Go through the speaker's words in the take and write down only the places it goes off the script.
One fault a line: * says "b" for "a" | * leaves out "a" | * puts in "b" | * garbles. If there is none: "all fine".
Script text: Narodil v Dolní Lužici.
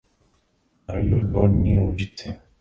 all fine